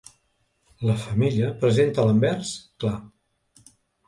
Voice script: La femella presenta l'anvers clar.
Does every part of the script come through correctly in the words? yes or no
yes